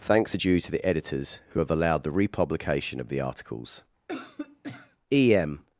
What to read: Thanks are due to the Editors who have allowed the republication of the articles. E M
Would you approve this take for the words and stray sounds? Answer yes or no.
no